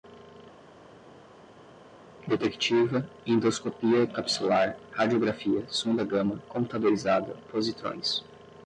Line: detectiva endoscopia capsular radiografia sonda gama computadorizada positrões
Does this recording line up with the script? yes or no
yes